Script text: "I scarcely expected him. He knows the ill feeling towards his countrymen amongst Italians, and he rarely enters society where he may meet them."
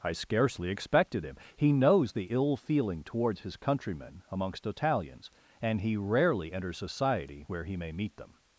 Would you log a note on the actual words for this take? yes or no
no